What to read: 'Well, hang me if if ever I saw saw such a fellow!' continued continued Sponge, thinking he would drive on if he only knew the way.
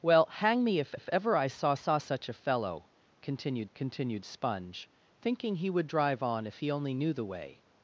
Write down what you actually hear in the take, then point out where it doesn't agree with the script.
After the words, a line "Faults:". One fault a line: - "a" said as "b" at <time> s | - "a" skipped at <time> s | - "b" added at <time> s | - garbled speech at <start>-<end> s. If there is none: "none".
'Well, hang me if if ever I saw saw such a fellow!' continued continued Sponge, thinking he would drive on if he only knew the way.
Faults:
none